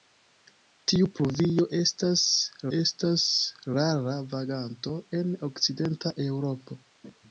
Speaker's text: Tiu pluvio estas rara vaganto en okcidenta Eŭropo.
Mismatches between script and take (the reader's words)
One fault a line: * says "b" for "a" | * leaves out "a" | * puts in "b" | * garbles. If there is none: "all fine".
* puts in "estas"